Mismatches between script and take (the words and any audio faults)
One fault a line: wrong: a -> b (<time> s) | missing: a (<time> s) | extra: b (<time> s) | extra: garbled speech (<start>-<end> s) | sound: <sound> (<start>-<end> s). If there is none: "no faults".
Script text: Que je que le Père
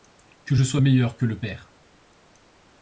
extra: sois meilleur (0.6 s)